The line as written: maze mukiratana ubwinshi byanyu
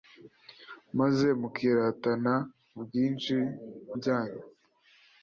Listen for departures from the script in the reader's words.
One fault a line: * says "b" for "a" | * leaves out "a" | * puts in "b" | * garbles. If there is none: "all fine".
all fine